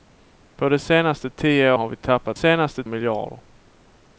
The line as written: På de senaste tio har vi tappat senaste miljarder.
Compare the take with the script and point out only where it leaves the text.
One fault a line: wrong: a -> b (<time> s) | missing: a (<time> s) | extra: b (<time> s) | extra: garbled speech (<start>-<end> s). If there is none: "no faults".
no faults